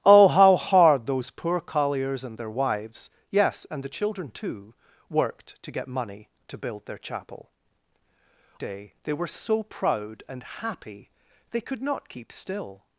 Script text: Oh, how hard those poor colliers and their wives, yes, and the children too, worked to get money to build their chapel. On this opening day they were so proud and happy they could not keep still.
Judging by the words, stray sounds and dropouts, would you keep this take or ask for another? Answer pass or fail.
fail